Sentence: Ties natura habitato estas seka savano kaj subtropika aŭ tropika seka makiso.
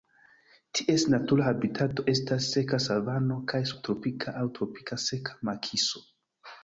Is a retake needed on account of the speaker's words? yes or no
no